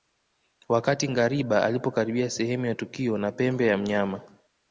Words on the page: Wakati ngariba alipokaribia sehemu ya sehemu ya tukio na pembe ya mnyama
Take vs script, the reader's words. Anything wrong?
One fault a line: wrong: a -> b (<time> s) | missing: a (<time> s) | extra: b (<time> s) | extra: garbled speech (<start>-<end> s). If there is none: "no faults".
missing: sehemu ya (2.8 s)